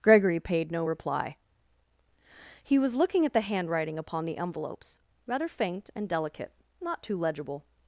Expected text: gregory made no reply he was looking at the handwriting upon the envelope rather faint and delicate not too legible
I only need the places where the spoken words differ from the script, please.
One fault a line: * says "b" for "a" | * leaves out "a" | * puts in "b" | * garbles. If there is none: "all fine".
* says "paid" for "made"
* says "envelopes" for "envelope"